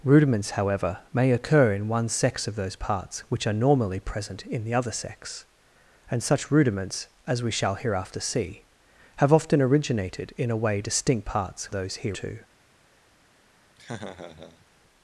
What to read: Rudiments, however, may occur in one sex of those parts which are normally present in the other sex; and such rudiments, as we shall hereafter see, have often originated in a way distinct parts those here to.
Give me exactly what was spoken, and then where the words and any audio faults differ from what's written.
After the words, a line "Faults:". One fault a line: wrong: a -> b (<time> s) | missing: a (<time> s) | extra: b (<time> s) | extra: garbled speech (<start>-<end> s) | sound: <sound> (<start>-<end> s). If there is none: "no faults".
Rudiments, however, may occur in one sex of those parts which are normally present in the other sex; and such rudiments, as we shall hereafter see, have often originated in a way distinct parts those here to.
Faults:
sound: laugh (13.8-14.7 s)